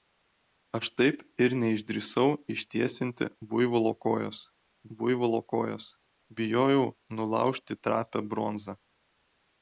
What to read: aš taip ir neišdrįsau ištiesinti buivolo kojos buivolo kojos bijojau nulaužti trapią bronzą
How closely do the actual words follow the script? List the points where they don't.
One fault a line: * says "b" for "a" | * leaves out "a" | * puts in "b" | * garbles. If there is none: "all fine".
all fine